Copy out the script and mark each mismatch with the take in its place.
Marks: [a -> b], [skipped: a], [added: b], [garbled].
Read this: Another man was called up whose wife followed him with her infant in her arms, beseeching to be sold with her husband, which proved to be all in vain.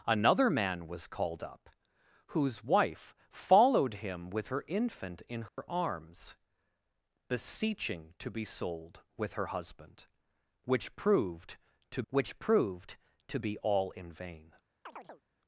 Another man was called up whose wife followed him with her infant in her arms, beseeching to be sold with her husband, which proved to [added: which proved to] be all in vain.